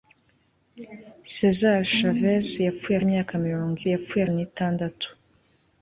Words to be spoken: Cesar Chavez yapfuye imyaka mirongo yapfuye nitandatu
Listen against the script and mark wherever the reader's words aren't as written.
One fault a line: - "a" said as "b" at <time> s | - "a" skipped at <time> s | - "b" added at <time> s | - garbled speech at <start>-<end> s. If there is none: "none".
none